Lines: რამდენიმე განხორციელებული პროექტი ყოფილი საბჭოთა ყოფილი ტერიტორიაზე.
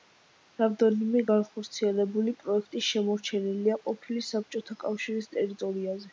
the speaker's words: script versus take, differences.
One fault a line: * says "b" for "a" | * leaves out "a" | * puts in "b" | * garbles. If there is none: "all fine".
* puts in "შემორჩენილია"
* says "კავშირის" for "ყოფილი"